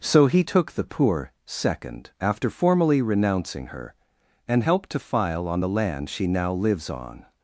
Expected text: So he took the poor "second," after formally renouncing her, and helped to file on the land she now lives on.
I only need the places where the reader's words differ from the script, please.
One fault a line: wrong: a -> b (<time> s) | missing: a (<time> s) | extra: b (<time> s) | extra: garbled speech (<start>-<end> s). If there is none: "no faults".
no faults